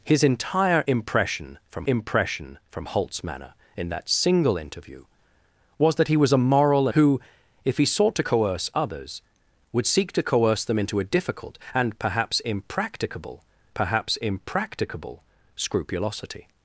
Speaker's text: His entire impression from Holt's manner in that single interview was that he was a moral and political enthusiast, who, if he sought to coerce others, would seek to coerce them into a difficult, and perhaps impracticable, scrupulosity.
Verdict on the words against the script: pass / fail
fail